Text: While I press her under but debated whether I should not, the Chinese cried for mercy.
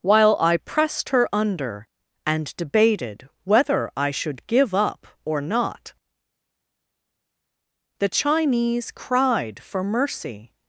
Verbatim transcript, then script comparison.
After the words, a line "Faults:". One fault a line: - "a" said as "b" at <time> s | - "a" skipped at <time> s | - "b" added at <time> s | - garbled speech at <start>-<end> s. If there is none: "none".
While I pressed her under and debated whether I should give up or not, the Chinese cried for mercy.
Faults:
- "press" said as "pressed" at 0.6 s
- "but" said as "and" at 2.2 s
- "give up or" added at 4.5 s